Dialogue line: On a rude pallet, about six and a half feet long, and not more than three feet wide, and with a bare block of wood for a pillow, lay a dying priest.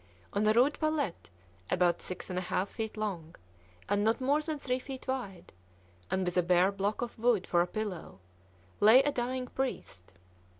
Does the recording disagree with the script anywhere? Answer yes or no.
no